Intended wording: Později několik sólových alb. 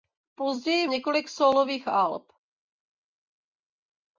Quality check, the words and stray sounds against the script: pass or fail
pass